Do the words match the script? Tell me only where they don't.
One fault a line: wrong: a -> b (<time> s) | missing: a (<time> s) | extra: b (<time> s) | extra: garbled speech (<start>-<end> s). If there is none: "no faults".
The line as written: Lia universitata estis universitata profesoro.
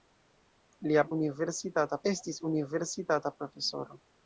no faults